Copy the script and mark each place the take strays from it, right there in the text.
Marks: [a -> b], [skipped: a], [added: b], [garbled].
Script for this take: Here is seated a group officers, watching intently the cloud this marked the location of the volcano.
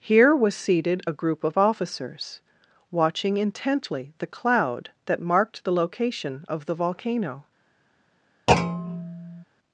Here [is -> was] seated a group [added: of] officers, watching intently the cloud [this -> that] marked the location of the volcano.